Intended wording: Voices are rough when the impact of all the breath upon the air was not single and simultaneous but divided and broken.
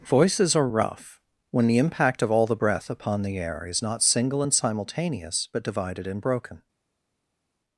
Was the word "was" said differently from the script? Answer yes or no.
yes